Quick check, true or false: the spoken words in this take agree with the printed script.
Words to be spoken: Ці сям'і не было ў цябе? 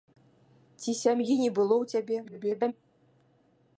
false